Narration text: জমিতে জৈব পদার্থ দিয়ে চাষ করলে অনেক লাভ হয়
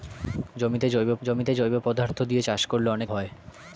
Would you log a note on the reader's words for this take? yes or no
yes